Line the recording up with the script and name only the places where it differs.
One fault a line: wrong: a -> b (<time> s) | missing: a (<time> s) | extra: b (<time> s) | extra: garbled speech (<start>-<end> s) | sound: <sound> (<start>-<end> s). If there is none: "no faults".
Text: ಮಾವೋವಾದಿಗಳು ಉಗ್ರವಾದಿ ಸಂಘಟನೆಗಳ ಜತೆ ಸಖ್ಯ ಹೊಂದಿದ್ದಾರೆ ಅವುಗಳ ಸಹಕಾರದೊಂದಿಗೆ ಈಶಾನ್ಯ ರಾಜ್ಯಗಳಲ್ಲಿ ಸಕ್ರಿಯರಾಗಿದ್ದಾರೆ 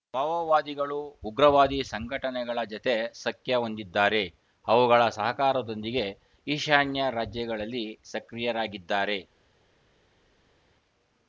no faults